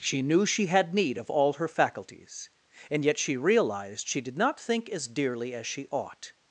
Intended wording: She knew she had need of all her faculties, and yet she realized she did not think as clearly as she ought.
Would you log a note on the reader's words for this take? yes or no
yes